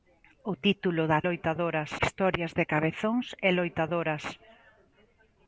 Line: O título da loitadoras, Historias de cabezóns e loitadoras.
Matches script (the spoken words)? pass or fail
pass